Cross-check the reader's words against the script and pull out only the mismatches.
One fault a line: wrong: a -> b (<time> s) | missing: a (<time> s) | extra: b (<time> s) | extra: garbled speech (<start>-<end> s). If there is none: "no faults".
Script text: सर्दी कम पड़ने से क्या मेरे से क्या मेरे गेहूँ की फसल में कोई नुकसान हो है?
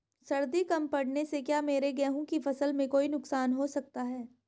missing: से क्या मेरे (1.9 s)
extra: सकता (3.7 s)